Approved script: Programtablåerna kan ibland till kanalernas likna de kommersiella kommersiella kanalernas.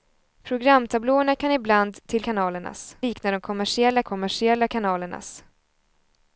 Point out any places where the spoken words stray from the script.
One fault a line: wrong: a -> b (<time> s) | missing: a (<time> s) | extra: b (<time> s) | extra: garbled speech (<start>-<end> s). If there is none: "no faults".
no faults